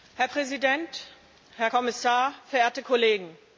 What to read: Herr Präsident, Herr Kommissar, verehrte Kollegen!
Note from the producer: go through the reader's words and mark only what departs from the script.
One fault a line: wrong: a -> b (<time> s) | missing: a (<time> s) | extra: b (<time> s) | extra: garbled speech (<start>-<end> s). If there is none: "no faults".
no faults